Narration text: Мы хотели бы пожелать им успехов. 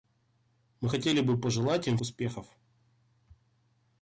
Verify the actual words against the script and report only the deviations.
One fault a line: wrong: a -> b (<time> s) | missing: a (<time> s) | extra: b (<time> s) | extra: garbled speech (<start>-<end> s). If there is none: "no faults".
no faults